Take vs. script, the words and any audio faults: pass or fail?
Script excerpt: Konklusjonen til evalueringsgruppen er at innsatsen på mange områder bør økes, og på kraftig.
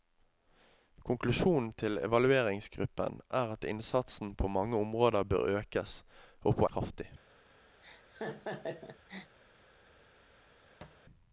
fail